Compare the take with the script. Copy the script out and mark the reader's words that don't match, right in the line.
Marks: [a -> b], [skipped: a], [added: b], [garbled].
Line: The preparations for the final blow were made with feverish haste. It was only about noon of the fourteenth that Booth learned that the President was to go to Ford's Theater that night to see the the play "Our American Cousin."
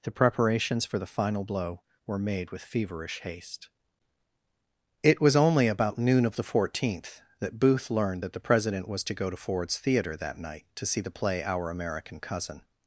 The preparations for the final blow were made with feverish haste. It was only about noon of the fourteenth that Booth learned that the President was to go to Ford's Theater that night to see the [skipped: the] play "Our American Cousin."